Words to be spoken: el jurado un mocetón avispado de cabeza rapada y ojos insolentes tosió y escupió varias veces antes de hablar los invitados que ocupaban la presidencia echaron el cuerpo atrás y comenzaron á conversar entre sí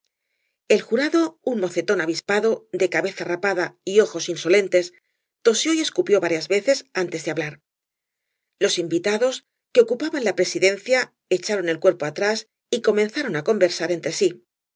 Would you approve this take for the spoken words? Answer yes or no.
yes